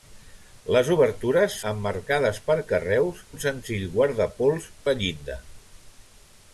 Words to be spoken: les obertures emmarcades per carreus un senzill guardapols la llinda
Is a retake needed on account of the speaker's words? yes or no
no